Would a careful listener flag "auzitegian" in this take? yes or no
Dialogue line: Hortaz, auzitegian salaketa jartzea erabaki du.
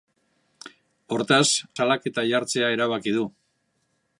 yes